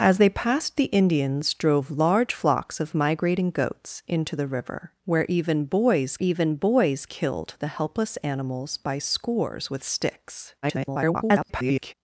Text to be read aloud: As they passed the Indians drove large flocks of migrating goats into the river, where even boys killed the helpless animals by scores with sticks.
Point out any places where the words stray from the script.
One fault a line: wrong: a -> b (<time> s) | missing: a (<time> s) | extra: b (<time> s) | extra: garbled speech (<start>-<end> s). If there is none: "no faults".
extra: even boys (6.2 s)
extra: garbled speech (10.6-11.9 s)